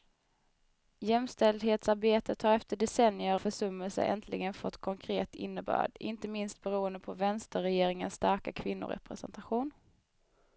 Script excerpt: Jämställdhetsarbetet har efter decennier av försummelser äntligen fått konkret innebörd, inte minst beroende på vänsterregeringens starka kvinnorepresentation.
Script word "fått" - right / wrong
right